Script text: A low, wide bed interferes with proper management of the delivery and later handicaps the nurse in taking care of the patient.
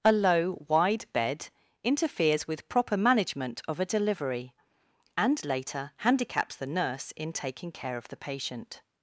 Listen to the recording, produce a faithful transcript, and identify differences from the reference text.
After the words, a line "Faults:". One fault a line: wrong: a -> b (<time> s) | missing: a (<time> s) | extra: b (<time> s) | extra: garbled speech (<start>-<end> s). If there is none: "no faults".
A low, wide bed interferes with proper management of a delivery and later handicaps the nurse in taking care of the patient.
Faults:
wrong: the -> a (3.8 s)